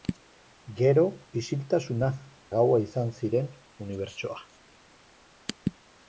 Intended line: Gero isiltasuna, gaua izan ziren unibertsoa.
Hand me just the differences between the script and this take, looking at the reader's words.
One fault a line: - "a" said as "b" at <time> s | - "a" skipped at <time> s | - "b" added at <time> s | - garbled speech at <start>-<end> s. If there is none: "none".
none